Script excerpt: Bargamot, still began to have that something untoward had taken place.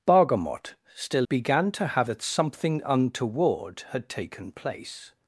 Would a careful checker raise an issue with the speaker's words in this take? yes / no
no